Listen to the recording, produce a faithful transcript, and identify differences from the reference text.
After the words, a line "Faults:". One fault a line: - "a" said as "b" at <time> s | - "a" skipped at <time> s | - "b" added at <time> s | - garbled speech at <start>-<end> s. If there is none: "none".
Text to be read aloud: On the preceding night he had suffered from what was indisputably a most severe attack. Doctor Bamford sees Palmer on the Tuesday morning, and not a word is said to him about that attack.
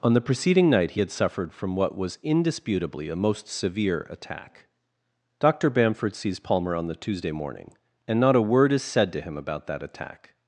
On the preceding night he had suffered from what was indisputably a most severe attack. Doctor Bamford sees Palmer on the Tuesday morning, and not a word is said to him about that attack.
Faults:
none